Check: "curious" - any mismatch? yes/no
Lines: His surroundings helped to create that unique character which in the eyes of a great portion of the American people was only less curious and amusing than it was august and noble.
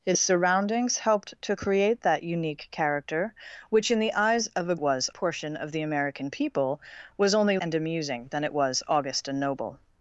yes